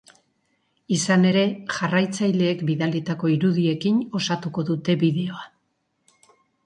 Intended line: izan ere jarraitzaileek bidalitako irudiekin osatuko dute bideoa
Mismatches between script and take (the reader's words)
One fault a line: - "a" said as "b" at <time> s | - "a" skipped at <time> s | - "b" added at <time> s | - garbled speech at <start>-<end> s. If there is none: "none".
none